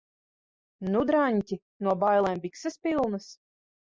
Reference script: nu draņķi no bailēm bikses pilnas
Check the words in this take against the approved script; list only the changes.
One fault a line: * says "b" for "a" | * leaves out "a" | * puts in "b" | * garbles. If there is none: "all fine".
all fine